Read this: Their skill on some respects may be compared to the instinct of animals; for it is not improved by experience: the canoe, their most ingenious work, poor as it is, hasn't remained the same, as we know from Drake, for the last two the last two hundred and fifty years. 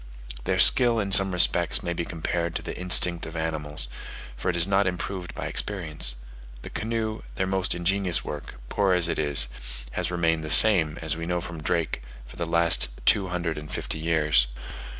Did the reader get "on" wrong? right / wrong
wrong